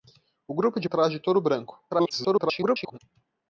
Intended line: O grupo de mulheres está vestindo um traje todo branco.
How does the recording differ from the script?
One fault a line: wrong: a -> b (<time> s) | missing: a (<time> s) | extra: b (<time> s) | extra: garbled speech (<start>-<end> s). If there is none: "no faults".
missing: mulheres está vestindo (0.9 s)
extra: garbled speech (1.9-3.0 s)